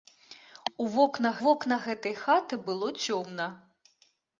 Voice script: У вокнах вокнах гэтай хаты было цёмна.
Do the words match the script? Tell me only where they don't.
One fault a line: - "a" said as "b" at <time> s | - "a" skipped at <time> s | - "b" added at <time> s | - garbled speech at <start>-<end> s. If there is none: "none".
none